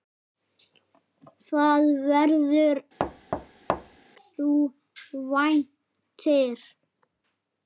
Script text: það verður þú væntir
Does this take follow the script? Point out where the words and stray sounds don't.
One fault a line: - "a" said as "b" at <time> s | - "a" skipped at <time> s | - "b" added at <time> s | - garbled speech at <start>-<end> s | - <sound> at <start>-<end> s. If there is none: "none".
- thud at 3.0-4.0 s